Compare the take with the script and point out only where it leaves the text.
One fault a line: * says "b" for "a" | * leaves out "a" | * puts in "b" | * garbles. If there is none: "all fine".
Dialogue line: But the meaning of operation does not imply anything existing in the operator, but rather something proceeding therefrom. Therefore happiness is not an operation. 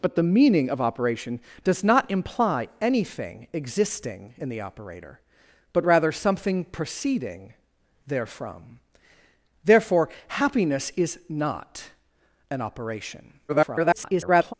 * garbles